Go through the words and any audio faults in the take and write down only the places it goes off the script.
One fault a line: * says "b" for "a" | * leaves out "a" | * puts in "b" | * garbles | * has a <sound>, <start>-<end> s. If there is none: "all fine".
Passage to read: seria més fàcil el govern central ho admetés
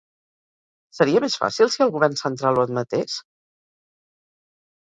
* puts in "si"